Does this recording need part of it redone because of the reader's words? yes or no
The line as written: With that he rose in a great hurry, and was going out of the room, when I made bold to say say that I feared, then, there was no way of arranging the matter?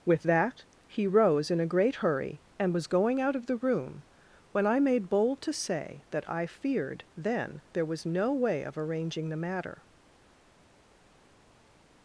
yes